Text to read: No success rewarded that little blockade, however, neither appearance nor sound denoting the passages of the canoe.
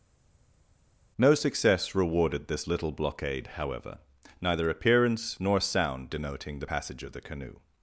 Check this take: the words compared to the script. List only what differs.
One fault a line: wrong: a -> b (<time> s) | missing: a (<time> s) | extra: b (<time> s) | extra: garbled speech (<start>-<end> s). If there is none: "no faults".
wrong: that -> this (2.5 s)
wrong: passages -> passage (6.6 s)